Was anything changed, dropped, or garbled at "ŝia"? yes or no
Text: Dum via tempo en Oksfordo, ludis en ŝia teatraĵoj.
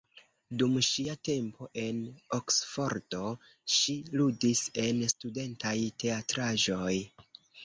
yes